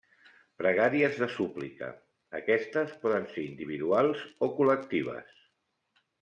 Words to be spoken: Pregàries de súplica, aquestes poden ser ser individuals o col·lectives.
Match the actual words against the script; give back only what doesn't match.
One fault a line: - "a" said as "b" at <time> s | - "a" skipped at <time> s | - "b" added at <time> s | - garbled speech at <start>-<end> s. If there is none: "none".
- "ser" skipped at 3.5 s